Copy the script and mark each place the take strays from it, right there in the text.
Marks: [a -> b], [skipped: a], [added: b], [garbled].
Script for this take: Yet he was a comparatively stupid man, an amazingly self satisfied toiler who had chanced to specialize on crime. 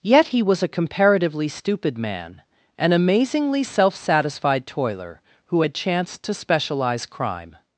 Yet he was a comparatively stupid man, an amazingly self satisfied toiler who had chanced to specialize [skipped: on] crime.